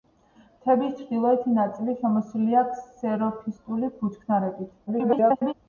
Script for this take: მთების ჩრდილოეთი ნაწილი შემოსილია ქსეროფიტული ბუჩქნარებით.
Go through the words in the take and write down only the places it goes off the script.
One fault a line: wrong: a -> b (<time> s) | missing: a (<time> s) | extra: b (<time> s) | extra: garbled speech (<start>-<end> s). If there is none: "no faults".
extra: garbled speech (4.9-5.5 s)